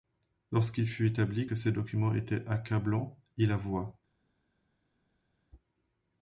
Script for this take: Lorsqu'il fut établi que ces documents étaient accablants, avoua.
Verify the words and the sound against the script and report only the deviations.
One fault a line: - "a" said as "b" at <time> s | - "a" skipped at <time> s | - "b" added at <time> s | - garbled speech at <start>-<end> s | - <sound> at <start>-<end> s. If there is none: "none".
- "il" added at 3.3 s